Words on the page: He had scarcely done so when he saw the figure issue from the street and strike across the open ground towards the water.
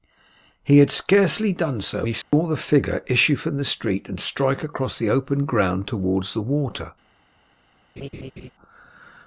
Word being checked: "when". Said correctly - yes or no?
no